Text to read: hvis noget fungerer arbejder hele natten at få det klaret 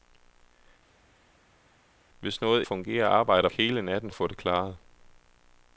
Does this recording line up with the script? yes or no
yes